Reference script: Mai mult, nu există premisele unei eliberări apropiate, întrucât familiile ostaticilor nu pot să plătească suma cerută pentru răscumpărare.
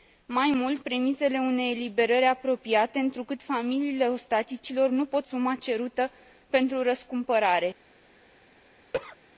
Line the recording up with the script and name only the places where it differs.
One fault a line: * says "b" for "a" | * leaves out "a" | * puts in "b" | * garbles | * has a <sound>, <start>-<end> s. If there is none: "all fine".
* leaves out "nu există"
* leaves out "să plătească"
* has a cough, 8.9-9.2 s